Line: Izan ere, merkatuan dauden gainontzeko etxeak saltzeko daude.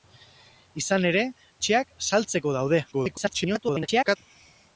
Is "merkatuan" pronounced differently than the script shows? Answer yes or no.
yes